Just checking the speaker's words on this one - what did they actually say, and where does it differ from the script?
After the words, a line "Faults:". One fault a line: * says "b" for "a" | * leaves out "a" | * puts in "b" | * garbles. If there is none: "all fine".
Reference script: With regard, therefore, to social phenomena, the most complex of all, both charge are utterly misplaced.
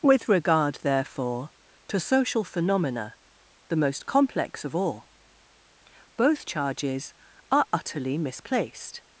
With regard, therefore, to social phenomena, the most complex of all, both charges are utterly misplaced.
Faults:
* says "charges" for "charge"